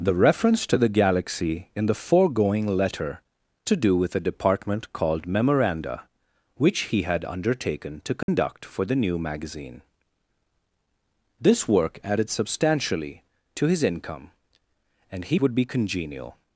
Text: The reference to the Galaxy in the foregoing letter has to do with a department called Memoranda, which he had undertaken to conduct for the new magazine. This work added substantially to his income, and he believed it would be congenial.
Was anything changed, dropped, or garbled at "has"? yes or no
yes